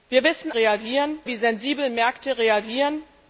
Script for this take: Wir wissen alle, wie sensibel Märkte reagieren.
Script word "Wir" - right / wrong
right